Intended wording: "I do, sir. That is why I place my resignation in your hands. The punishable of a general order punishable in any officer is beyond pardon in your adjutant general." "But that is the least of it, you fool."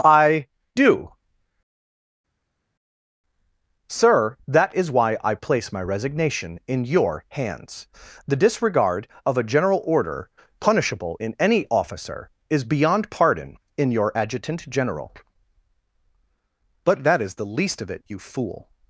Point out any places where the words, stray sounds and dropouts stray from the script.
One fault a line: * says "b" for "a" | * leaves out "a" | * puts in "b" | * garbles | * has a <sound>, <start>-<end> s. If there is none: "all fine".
* says "disregard" for "punishable"